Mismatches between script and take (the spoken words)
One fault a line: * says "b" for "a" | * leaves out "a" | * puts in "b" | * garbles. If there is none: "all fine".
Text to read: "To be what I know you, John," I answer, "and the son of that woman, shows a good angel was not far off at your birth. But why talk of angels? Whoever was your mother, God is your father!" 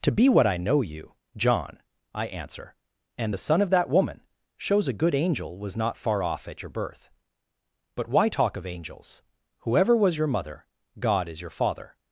all fine